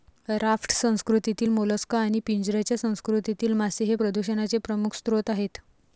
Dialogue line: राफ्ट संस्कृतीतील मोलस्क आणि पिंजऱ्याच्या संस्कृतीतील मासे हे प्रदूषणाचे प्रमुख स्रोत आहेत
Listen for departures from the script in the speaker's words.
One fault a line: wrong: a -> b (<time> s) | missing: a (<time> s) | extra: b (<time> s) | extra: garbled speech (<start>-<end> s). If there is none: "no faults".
no faults